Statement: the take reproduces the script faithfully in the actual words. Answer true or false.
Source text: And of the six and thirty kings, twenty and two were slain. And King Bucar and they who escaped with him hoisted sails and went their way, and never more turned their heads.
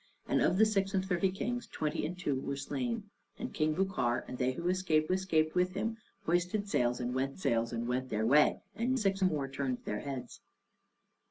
false